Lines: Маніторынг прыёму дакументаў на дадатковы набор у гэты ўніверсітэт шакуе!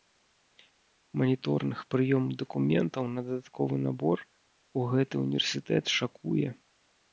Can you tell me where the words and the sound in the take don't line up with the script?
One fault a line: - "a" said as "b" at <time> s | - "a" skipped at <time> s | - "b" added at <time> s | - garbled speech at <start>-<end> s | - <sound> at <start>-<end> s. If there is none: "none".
none